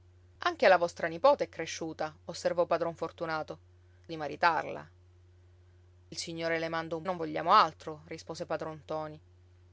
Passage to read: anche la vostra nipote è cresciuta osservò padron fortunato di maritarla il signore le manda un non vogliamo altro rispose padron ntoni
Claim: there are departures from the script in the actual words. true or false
false